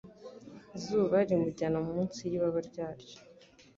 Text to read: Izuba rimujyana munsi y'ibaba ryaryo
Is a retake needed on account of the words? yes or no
no